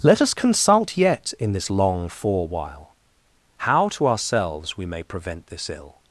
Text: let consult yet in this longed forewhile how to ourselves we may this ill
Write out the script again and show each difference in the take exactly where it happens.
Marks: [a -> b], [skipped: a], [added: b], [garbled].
let [added: us] consult yet in this [longed -> long] forewhile how to ourselves we may [added: prevent] this ill